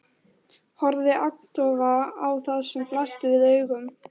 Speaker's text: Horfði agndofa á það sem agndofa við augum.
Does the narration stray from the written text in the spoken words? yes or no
yes